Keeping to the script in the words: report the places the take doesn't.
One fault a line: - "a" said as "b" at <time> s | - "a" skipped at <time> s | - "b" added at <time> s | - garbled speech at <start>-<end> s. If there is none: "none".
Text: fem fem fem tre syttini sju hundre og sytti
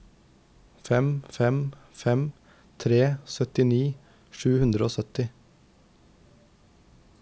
none